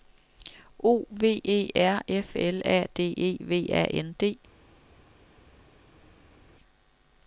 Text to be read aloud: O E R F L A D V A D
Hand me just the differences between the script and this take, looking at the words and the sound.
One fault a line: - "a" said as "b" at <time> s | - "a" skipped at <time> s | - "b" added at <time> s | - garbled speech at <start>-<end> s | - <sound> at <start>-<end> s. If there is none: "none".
- "V" added at 1.1 s
- "E" added at 3.1 s
- "N" added at 3.9 s